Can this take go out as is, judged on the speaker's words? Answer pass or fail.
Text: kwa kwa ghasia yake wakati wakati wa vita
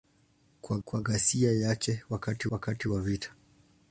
pass